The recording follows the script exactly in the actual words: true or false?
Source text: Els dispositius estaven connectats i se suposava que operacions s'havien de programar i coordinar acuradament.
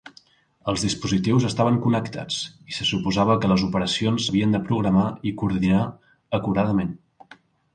false